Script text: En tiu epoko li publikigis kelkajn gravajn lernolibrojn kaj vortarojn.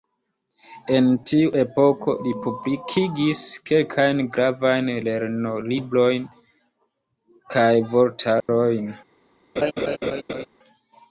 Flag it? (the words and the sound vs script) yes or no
yes